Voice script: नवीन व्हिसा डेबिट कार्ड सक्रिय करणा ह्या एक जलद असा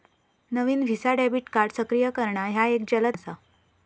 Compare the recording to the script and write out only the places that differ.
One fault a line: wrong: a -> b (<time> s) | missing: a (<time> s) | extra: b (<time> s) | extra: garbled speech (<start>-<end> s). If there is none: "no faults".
no faults